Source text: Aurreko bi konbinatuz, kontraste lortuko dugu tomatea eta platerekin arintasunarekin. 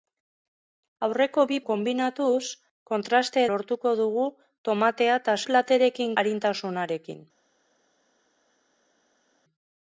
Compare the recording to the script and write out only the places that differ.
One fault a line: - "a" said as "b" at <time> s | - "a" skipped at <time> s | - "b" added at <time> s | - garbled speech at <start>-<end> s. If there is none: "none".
none